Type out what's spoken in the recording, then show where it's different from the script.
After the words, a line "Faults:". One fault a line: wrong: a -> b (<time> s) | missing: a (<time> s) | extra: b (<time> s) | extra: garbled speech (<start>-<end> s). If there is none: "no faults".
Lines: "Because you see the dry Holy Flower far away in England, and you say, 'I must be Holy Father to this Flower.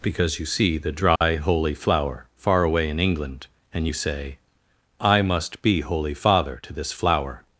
"Because you see the dry Holy Flower far away in England, and you say, 'I must be Holy Father to this Flower.
Faults:
no faults